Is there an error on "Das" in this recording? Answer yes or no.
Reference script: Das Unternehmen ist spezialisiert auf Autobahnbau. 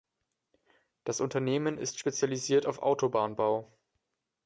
no